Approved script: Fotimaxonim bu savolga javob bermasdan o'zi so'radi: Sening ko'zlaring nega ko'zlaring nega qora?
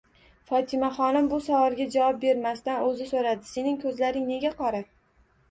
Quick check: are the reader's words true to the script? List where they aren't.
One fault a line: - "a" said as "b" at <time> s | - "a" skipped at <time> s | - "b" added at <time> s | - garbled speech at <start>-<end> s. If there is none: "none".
- "ko'zlaring nega" skipped at 4.5 s